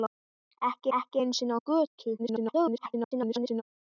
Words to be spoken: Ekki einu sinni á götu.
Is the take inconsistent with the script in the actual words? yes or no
yes